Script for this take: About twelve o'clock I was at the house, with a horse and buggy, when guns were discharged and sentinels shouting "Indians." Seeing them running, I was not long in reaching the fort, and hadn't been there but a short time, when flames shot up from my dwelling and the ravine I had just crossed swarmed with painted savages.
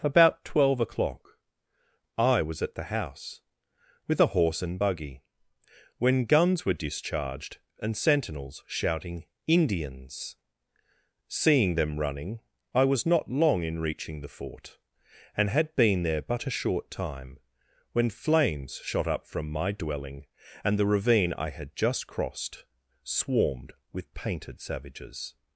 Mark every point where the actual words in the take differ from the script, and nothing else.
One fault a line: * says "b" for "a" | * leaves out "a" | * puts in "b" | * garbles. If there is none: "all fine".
* says "had" for "hadn't"